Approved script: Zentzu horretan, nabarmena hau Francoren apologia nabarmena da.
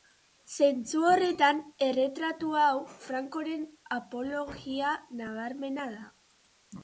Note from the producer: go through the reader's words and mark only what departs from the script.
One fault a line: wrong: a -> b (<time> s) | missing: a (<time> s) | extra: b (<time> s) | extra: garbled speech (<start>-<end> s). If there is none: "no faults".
wrong: nabarmena -> erretratu (1.9 s)